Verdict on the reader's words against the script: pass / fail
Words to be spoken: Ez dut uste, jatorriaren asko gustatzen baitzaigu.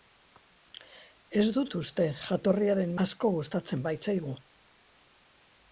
pass